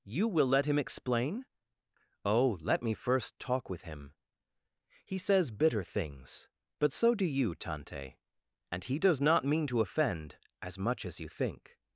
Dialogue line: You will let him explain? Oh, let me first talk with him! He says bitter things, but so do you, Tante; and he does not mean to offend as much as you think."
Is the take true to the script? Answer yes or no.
yes